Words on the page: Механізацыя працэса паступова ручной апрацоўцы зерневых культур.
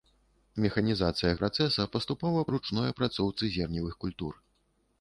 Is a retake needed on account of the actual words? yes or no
no